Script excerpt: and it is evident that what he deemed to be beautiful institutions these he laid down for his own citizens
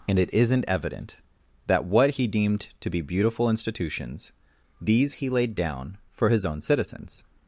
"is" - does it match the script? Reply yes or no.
no